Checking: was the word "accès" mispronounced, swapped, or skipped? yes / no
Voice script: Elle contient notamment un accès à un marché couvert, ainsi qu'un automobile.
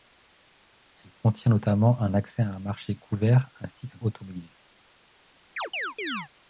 no